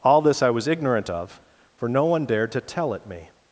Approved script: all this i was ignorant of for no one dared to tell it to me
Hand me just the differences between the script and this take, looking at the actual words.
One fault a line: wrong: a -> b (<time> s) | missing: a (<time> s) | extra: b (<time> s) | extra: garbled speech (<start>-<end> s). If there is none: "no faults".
missing: to (3.1 s)